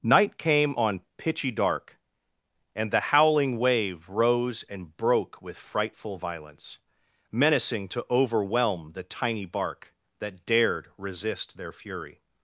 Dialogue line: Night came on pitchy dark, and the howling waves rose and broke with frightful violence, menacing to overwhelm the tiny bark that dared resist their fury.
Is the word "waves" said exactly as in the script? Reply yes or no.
no